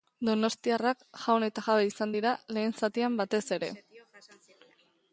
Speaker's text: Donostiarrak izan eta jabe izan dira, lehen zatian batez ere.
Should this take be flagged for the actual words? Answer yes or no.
yes